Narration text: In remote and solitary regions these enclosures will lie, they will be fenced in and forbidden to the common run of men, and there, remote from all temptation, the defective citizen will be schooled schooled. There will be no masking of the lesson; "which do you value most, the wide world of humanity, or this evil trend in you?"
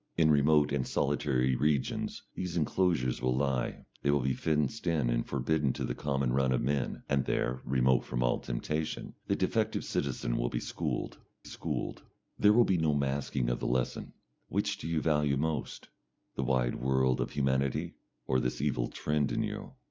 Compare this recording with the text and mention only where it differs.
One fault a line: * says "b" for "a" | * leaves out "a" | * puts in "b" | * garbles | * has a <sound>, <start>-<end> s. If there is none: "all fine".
all fine